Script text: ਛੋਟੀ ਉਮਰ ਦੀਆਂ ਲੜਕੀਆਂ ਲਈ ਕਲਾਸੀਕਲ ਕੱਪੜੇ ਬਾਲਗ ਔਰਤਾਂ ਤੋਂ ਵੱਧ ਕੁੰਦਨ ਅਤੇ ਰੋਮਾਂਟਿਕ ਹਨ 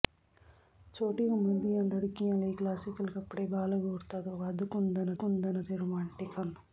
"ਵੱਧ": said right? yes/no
yes